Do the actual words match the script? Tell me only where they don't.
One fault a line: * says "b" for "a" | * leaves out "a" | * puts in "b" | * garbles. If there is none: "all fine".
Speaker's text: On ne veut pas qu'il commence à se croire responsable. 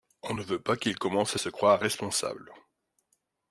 all fine